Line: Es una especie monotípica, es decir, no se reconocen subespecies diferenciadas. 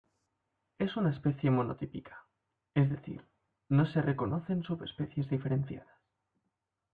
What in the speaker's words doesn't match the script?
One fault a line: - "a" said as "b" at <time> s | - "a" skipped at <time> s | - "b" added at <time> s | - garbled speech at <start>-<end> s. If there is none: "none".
none